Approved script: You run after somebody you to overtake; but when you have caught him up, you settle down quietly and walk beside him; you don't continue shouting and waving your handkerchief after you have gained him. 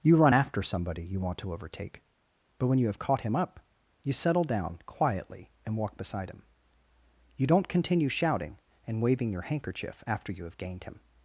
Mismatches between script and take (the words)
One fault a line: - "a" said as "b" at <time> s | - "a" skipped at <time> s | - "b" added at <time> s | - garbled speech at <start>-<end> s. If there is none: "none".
- "want" added at 1.2 s